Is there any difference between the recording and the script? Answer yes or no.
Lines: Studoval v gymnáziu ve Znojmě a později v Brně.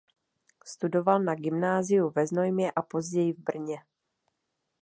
yes